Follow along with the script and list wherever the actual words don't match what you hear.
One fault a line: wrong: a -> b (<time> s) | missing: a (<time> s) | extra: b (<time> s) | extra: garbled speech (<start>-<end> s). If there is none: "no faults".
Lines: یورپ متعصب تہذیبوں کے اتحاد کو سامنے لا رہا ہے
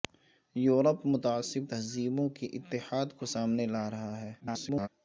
extra: garbled speech (4.4-4.9 s)